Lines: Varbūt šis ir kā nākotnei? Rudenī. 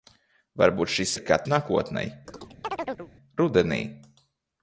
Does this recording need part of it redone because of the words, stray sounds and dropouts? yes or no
yes